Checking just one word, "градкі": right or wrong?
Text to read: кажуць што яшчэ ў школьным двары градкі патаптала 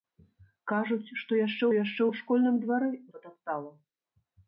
wrong